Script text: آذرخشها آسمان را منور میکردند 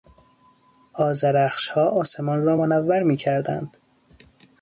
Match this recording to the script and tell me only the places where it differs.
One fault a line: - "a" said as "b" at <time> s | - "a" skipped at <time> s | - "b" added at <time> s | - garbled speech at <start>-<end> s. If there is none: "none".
none